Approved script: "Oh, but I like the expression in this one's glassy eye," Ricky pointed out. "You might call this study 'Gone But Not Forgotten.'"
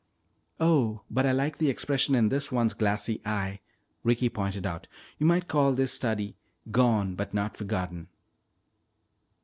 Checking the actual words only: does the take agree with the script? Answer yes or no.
yes